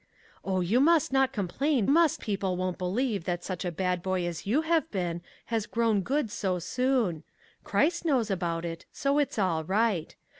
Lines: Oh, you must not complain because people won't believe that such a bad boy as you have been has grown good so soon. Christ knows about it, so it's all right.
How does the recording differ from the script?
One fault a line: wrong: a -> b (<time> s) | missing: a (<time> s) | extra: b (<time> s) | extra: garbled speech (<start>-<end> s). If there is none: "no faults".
wrong: because -> must (1.9 s)